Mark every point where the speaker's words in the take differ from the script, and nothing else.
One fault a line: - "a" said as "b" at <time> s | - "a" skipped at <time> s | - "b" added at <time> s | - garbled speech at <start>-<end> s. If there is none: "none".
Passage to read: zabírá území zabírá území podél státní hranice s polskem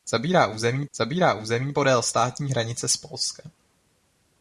none